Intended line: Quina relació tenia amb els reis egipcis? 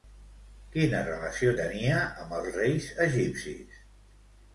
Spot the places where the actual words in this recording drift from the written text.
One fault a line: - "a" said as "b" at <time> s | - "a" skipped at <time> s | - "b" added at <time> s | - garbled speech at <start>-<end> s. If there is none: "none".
none